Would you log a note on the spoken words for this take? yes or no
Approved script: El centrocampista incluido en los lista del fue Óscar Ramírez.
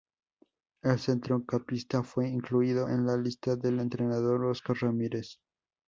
yes